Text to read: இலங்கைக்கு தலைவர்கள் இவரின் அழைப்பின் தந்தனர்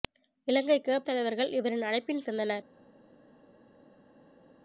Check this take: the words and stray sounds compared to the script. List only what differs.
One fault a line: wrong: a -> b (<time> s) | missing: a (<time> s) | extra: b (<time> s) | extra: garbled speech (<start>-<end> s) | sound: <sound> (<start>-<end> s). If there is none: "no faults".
no faults